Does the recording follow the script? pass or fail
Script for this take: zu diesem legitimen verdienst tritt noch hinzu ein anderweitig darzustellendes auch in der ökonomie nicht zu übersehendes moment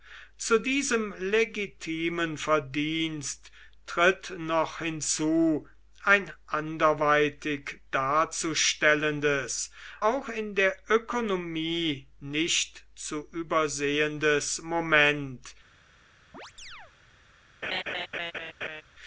pass